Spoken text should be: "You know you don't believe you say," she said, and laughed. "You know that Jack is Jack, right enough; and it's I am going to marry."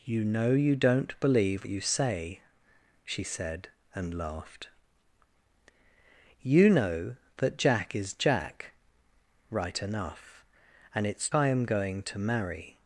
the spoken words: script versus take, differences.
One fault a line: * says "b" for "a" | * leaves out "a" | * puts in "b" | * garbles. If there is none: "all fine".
all fine